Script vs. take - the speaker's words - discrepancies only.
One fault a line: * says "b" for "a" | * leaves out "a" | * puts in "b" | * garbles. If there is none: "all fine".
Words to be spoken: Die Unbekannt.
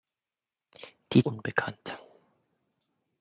all fine